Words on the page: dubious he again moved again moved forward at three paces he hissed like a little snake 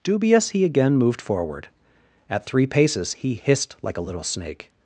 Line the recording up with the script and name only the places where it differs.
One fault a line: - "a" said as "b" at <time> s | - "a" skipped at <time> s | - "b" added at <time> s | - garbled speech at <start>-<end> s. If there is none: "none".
- "again moved" skipped at 1.2 s